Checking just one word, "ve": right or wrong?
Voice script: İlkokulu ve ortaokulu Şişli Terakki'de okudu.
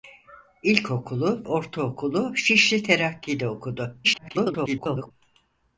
wrong